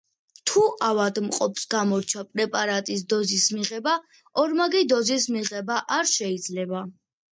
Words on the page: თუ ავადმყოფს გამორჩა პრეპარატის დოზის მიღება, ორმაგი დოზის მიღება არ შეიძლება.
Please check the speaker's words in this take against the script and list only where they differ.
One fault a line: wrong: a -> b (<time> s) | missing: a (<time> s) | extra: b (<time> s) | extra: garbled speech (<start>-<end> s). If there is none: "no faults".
no faults